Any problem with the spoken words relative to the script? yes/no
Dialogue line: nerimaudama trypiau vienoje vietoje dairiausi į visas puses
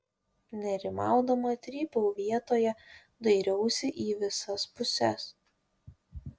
yes